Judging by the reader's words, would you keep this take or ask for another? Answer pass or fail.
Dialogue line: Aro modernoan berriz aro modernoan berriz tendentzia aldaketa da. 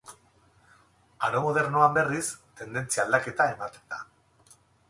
fail